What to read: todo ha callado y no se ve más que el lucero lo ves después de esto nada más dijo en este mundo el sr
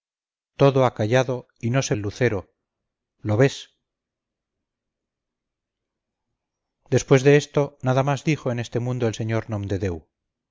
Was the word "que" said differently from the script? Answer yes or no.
yes